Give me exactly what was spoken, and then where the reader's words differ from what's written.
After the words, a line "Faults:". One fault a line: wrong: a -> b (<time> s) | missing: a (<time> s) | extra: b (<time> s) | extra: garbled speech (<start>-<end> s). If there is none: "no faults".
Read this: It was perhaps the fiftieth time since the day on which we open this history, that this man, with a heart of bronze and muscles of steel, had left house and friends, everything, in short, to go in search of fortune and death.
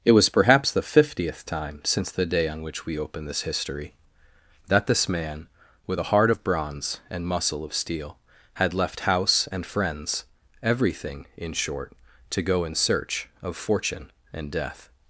It was perhaps the fiftieth time since the day on which we open this history, that this man, with a heart of bronze and muscle of steel, had left house and friends, everything, in short, to go in search of fortune and death.
Faults:
wrong: muscles -> muscle (7.3 s)